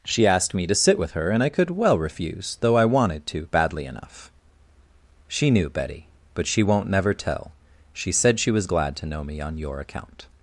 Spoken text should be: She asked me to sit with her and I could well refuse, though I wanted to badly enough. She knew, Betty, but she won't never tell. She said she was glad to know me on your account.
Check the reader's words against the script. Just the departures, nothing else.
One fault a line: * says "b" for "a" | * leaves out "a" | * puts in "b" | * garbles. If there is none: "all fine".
all fine